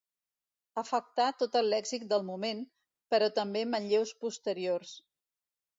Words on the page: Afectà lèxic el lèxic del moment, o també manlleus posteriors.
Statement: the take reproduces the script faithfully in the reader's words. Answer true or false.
false